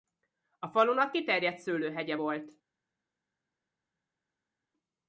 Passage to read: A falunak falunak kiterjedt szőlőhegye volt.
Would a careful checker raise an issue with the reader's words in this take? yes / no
yes